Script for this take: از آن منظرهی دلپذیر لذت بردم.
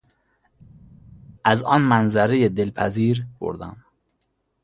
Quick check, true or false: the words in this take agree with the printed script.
false